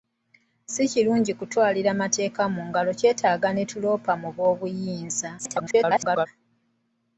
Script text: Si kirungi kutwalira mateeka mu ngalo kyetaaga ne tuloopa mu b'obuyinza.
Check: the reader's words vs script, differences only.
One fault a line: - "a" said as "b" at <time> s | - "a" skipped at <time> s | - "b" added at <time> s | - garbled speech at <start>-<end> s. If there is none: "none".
- garbled speech at 5.4-6.3 s